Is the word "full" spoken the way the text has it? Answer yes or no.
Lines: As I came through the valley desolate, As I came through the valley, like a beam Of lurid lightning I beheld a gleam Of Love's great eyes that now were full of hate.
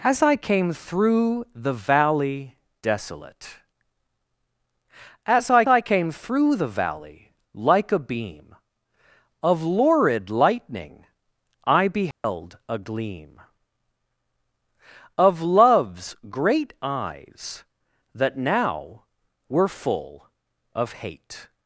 yes